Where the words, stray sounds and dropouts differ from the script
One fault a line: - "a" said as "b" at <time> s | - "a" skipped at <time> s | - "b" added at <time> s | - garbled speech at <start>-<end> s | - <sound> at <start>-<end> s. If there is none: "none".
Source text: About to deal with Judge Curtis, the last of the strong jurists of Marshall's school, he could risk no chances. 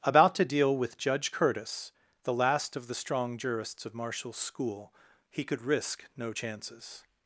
none